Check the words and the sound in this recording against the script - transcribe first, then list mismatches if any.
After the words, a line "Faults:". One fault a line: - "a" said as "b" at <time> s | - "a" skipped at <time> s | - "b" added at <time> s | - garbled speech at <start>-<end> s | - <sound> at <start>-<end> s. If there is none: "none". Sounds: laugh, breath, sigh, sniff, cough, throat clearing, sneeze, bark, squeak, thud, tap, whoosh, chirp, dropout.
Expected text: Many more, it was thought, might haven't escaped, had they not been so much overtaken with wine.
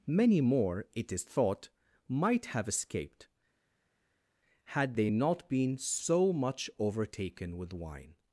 Many more, it is thought, might have escaped, had they not been so much overtaken with wine.
Faults:
- "was" said as "is" at 1.1 s
- "haven't" said as "have" at 2.5 s